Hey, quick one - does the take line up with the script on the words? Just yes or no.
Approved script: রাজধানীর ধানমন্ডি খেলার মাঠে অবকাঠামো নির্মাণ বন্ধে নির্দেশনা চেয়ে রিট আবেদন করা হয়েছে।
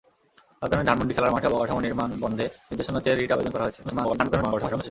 no